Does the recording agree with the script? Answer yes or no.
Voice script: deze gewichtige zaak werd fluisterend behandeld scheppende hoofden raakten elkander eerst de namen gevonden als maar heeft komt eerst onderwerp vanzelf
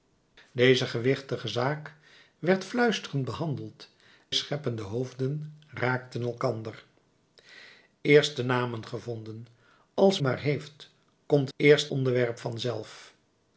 yes